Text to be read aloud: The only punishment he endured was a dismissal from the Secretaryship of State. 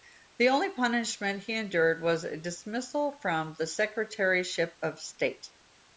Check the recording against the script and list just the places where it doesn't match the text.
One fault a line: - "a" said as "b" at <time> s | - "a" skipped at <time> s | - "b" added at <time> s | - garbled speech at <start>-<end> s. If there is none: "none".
none